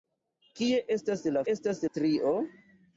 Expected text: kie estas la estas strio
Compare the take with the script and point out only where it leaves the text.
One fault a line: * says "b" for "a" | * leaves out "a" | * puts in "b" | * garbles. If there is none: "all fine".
all fine